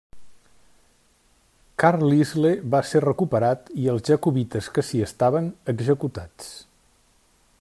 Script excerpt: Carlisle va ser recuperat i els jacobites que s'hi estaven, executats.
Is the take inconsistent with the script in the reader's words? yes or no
no